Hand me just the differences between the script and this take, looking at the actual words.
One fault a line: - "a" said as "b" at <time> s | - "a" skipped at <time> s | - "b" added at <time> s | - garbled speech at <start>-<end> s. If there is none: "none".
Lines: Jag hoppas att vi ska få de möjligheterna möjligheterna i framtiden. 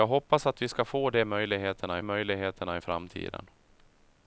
none